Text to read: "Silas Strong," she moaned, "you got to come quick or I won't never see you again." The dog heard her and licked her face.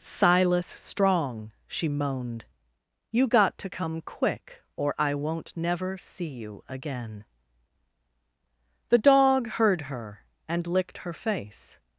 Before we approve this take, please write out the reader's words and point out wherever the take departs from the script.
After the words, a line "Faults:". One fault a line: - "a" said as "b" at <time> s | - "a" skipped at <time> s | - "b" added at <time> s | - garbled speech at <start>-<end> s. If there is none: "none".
"Silas Strong," she moaned, "you got to come quick or I won't never see you again." The dog heard her and licked her face.
Faults:
none